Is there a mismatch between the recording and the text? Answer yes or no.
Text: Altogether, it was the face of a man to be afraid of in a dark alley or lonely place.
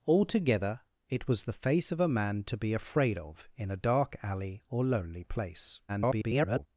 yes